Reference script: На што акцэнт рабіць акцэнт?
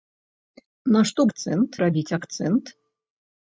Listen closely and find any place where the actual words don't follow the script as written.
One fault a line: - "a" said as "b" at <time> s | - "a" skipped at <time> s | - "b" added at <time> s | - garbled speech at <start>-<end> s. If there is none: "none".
none